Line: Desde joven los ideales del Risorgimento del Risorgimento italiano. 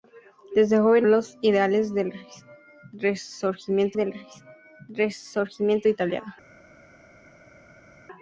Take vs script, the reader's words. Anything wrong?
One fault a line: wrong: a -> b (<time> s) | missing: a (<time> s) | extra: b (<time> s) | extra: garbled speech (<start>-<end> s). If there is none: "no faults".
no faults